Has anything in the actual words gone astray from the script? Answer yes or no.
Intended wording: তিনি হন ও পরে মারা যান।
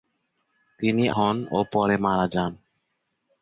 no